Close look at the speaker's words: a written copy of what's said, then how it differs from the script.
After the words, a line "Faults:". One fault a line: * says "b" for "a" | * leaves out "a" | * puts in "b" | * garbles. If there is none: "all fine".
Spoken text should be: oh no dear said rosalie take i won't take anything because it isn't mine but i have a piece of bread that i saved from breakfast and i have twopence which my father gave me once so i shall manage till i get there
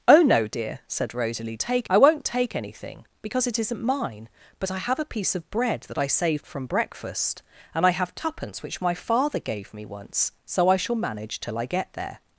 oh no dear said rosalie take i won't take anything because it isn't mine but i have a piece of bread that i saved from breakfast and i have twopence which my father gave me once so i shall manage till i get there
Faults:
all fine